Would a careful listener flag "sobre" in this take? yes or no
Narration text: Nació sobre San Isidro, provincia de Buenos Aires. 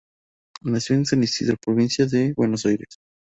yes